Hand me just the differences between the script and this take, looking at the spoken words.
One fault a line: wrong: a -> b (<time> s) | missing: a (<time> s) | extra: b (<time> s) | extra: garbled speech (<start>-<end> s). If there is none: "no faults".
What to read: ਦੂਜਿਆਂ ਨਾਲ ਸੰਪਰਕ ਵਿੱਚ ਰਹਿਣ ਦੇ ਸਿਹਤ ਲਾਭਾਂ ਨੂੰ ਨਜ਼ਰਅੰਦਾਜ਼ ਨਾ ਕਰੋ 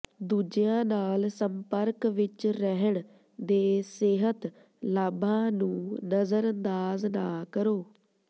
no faults